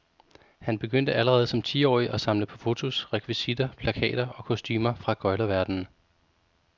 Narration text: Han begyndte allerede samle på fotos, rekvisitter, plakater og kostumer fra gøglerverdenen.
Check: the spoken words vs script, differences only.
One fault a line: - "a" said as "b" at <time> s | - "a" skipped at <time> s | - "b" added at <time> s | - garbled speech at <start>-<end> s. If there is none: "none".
- "som tiårig at" added at 1.5 s